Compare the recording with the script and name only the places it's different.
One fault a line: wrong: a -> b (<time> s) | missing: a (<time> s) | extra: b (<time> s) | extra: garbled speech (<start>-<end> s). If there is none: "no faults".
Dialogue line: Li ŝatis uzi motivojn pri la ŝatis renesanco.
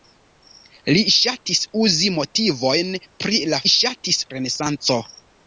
no faults